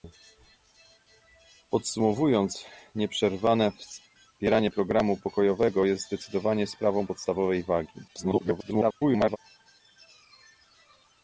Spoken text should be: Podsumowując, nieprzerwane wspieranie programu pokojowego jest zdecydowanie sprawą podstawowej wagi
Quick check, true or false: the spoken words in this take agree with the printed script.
false